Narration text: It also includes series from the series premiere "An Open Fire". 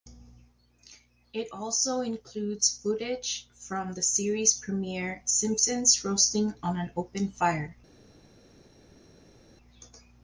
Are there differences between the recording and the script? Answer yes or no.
yes